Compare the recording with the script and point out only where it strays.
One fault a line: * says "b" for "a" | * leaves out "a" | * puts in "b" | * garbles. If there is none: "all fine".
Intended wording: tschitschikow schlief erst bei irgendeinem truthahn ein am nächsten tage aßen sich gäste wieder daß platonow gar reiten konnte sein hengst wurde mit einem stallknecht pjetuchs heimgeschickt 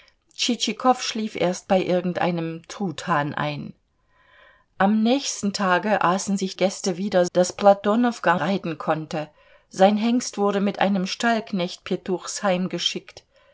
all fine